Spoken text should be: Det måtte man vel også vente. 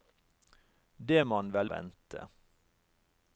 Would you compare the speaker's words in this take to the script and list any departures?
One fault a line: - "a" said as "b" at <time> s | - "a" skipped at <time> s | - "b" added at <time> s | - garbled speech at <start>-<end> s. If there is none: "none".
- "måtte" skipped at 1.2 s
- "også" skipped at 1.7 s